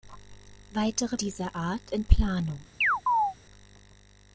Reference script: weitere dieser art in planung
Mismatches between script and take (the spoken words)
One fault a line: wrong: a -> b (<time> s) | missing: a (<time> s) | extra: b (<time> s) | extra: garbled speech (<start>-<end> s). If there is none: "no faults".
no faults